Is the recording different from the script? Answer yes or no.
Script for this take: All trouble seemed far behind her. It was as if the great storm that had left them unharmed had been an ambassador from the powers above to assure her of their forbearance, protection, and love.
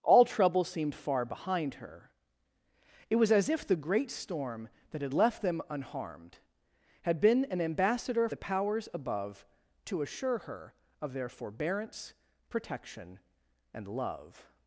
yes